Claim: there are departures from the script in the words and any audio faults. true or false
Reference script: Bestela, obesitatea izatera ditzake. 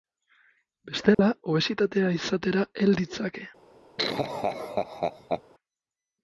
true